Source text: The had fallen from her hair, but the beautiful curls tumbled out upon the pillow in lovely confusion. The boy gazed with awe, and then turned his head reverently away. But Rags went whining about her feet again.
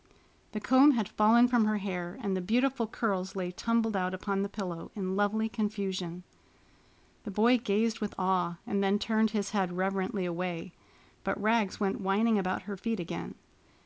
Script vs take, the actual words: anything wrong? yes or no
yes